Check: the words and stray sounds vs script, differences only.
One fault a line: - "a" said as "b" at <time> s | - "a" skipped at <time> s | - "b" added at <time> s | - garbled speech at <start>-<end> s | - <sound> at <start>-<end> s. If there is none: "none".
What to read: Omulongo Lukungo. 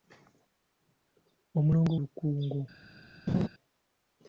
- laugh at 3.3-3.5 s